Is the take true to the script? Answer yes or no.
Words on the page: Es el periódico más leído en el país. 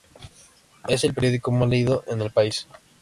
yes